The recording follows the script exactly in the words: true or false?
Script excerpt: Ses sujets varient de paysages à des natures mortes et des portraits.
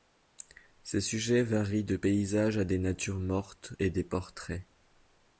true